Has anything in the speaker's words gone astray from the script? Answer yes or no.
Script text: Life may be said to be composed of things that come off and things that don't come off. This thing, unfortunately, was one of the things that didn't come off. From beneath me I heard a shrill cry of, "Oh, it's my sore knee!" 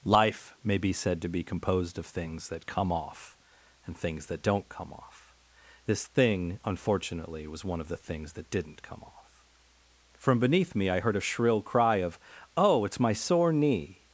no